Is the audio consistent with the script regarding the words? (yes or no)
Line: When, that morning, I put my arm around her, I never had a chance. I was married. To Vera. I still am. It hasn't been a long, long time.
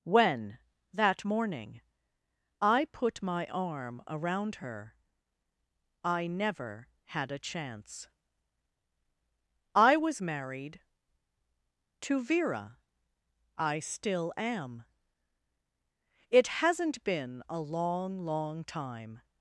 yes